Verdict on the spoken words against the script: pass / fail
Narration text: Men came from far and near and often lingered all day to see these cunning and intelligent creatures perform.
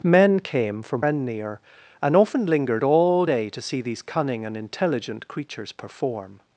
fail